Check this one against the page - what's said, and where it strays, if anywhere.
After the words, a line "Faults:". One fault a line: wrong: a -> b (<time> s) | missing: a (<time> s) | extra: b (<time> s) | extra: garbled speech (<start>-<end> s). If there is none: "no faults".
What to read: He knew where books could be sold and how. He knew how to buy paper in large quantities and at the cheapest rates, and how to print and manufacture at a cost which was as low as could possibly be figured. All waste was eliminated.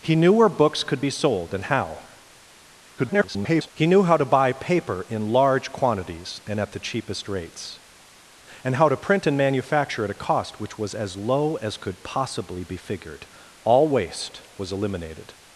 He knew where books could be sold and how. [garbled] He knew how to buy paper in large quantities and at the cheapest rates, and how to print and manufacture at a cost which was as low as could possibly be figured. All waste was eliminated.
Faults:
extra: garbled speech (3.0-3.7 s)